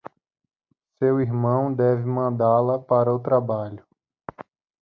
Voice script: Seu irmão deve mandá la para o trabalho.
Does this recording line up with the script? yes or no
yes